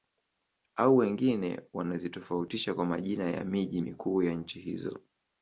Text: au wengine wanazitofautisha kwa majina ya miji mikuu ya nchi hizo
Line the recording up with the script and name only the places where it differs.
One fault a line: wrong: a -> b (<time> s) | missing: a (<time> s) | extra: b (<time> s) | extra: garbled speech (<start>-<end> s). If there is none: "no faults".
no faults